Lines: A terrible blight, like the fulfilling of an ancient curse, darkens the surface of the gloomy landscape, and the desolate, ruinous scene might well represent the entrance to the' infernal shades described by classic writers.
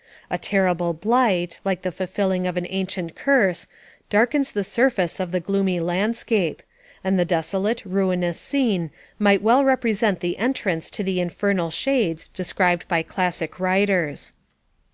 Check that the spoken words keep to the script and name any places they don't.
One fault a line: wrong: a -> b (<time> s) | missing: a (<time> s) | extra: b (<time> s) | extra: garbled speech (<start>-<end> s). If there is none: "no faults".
no faults